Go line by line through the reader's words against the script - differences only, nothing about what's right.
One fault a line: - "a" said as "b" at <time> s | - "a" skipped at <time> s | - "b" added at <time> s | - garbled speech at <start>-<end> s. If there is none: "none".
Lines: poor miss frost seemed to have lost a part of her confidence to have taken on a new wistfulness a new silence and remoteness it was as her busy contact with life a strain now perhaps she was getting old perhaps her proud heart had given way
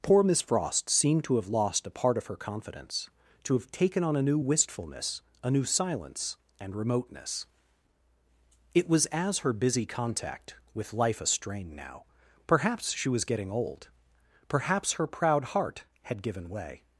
none